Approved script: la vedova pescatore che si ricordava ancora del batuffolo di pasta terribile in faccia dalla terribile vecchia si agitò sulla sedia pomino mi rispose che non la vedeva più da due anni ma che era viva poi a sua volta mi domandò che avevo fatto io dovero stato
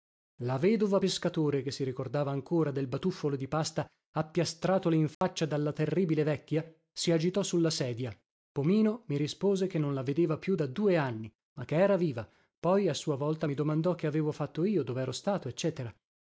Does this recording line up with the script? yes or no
no